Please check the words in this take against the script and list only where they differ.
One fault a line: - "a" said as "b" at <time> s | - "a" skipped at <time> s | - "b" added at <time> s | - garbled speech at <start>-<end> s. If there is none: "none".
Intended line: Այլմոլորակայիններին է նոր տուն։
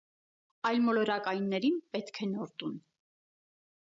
- "պետք" added at 2.0 s